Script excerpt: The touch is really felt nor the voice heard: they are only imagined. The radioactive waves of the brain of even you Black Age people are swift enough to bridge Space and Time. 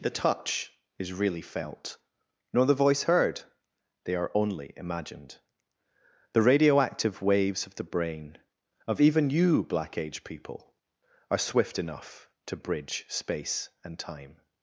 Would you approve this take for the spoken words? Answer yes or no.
yes